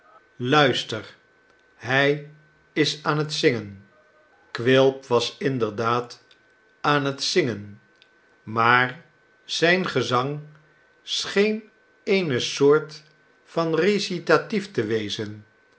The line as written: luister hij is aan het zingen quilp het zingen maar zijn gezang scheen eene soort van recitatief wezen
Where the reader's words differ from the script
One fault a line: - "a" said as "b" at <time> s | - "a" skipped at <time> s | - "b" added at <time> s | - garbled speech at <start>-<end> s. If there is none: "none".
- "was inderdaad aan" added at 5.0 s
- "te" added at 14.7 s